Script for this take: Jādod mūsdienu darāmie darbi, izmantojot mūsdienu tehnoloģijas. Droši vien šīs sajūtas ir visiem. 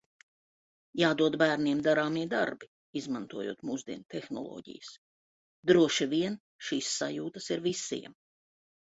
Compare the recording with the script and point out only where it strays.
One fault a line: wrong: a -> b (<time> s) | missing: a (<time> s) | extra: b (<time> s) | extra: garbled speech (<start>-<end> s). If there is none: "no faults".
wrong: mūsdienu -> bērniem (1.4 s)